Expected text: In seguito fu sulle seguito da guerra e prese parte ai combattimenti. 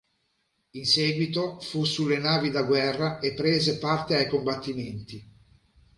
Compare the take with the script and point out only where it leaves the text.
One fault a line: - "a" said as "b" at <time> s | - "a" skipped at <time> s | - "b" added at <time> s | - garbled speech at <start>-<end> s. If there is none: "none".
- "seguito" said as "navi" at 2.2 s